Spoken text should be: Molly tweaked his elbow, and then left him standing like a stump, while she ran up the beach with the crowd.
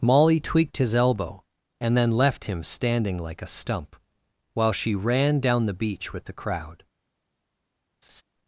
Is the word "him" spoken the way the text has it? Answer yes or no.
yes